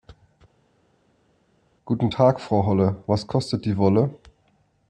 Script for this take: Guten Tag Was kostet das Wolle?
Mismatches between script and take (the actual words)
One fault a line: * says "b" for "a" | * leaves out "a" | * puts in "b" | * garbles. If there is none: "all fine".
* puts in "Frau Holle"
* says "die" for "das"